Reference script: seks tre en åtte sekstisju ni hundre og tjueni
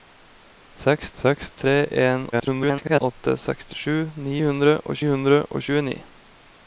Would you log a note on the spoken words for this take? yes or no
yes